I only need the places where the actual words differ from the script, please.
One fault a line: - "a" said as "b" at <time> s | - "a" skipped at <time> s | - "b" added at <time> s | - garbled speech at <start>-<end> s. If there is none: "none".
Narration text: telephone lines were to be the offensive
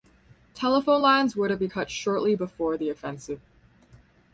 - "cut shortly before" added at 1.6 s